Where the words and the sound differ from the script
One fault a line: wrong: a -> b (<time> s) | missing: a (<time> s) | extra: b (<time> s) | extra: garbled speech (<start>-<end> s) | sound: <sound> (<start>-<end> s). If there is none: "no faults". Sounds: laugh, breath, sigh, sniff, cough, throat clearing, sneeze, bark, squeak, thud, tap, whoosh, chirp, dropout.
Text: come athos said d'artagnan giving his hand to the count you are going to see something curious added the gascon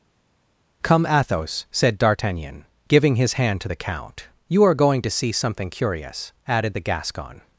no faults